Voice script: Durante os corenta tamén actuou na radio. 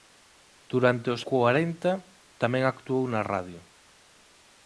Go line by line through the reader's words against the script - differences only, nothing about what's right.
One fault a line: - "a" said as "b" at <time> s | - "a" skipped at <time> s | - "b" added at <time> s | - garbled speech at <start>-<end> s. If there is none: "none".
none